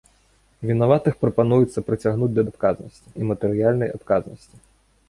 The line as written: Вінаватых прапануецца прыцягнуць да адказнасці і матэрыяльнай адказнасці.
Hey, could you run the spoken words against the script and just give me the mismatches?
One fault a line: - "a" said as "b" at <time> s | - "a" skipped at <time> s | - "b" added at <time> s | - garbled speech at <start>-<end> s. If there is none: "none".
none